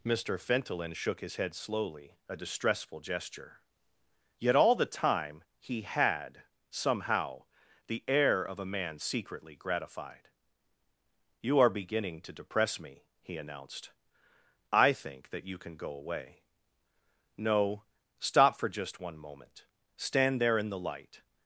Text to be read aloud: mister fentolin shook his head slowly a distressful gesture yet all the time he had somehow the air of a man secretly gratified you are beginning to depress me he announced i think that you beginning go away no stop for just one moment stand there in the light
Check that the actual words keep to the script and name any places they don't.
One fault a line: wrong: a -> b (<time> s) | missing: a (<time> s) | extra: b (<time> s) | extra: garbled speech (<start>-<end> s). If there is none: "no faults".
wrong: beginning -> can (15.6 s)